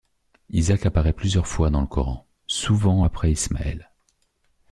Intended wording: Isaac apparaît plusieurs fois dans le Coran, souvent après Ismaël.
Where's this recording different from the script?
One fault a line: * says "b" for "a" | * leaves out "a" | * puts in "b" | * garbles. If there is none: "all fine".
all fine